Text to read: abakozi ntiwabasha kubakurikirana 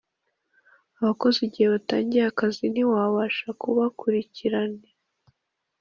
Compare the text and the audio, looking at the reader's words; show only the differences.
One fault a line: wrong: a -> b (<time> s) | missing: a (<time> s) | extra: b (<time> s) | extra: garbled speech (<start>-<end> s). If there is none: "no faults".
extra: igihe batangiye akazi (1.5 s)